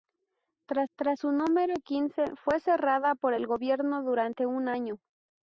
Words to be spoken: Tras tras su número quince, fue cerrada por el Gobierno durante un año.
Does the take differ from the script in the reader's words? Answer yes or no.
no